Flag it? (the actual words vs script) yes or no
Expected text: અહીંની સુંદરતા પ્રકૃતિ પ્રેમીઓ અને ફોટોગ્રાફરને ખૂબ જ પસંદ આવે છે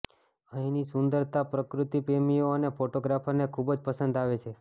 no